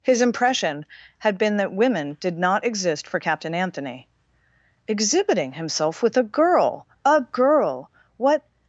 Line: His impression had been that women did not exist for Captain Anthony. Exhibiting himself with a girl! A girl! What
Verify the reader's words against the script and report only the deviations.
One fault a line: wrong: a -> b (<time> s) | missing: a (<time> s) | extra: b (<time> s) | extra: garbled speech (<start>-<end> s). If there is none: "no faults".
no faults